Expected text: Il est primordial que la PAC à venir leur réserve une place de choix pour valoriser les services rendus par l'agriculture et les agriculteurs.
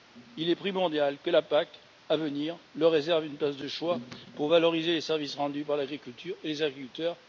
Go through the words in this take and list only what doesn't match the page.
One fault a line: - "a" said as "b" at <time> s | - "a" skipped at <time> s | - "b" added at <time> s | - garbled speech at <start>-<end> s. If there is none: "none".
none